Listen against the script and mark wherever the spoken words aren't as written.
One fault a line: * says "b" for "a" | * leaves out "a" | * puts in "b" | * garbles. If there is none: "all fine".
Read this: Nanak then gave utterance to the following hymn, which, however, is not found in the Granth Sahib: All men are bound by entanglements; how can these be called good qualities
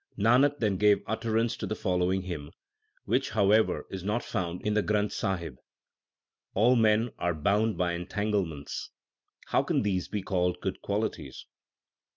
all fine